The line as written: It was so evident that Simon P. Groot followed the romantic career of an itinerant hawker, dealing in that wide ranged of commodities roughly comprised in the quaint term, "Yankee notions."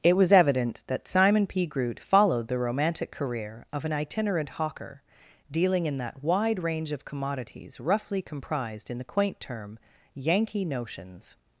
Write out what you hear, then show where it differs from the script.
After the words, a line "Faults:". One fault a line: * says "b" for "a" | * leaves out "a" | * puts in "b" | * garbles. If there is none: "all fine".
It was evident that Simon P. Groot followed the romantic career of an itinerant hawker, dealing in that wide range of commodities roughly comprised in the quaint term, "Yankee notions."
Faults:
* leaves out "so"
* says "range" for "ranged"